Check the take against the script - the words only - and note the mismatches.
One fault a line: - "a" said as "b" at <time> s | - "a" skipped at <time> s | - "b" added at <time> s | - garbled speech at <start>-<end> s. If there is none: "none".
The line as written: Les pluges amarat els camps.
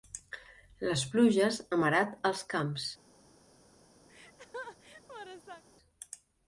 none